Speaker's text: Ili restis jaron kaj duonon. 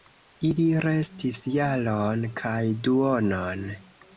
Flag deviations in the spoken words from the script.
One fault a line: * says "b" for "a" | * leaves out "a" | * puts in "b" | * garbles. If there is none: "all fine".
all fine